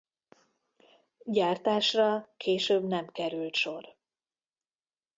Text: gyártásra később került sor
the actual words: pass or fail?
fail